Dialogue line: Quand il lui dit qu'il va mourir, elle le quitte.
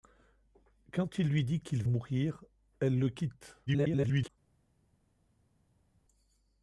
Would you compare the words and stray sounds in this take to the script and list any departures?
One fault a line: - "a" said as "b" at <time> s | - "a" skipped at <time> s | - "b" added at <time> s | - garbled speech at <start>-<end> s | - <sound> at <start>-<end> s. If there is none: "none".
- "va" skipped at 1.8 s
- garbled speech at 3.7-4.3 s